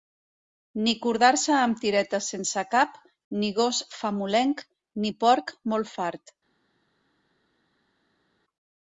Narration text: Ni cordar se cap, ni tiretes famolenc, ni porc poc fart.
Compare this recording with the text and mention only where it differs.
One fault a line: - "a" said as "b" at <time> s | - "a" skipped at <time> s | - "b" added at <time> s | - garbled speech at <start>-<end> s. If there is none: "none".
- "amb tiretes sense" added at 1.6 s
- "tiretes" said as "gos" at 3.6 s
- "poc" said as "molt" at 5.8 s